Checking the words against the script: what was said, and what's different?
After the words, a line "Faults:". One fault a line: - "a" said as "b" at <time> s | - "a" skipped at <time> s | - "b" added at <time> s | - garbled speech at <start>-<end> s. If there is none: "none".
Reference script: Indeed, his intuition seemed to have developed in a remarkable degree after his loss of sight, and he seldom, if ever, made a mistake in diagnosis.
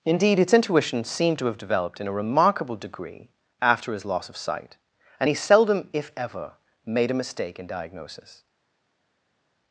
Indeed, its intuition seemed to have developed in a remarkable degree after his loss of sight, and he seldom, if ever, made a mistake in diagnosis.
Faults:
- "his" said as "its" at 0.4 s